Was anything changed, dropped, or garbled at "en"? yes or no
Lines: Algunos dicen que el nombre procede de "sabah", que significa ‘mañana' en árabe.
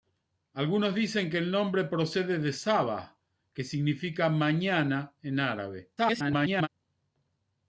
no